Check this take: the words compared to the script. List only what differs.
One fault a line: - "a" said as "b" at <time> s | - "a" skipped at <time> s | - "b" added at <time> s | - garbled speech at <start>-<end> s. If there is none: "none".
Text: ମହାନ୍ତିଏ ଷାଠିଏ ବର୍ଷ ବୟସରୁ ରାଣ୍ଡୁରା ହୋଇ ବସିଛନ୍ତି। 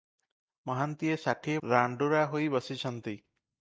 - "ବର୍ଷ ବୟସରୁ" skipped at 1.6 s